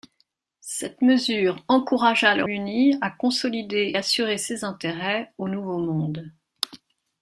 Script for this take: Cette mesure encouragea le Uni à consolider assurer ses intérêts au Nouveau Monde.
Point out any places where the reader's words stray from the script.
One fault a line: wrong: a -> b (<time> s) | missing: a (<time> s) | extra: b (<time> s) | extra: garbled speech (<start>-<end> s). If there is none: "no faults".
no faults